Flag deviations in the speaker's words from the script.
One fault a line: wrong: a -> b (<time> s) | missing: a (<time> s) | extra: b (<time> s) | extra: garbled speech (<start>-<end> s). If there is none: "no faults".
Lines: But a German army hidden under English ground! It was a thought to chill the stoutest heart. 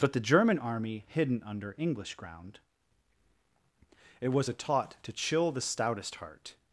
wrong: a -> the (0.1 s)
wrong: thought -> taught (4.5 s)